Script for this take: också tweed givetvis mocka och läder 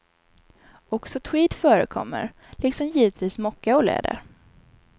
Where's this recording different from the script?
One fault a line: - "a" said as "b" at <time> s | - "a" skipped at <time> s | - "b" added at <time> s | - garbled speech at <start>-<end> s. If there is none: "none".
- "förekommer liksom" added at 1.5 s